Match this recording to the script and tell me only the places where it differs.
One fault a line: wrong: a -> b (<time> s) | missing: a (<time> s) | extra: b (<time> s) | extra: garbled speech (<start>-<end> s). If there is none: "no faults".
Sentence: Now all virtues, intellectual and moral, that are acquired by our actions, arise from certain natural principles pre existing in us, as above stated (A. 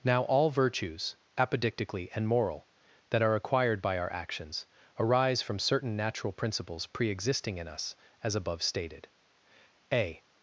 wrong: intellectual -> apodictically (1.4 s)